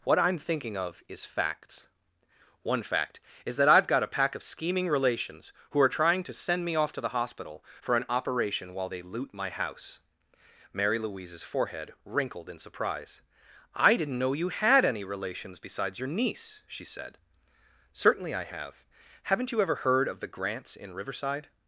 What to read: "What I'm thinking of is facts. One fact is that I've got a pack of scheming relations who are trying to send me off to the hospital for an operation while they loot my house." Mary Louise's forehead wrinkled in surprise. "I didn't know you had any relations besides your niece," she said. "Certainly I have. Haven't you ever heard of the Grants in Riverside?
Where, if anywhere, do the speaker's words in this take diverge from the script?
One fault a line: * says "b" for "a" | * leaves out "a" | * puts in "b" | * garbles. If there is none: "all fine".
all fine